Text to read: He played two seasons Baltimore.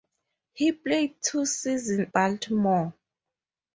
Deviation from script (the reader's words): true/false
false